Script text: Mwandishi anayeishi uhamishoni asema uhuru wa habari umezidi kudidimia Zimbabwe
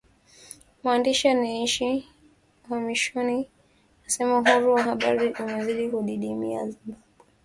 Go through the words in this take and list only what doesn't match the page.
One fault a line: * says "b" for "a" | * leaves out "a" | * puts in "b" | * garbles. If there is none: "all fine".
all fine